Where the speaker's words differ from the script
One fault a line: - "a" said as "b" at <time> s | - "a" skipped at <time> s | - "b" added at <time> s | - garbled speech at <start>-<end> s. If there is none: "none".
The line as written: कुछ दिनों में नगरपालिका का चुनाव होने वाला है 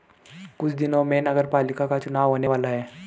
none